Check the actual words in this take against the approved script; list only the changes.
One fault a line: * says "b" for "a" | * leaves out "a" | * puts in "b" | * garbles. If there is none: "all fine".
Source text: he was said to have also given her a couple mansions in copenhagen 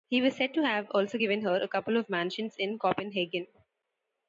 * puts in "of"